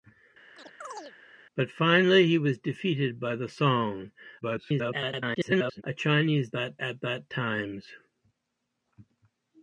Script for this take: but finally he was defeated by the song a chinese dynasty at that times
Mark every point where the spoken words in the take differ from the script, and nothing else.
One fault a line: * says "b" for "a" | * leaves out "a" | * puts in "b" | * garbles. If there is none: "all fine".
* garbles
* says "that" for "dynasty"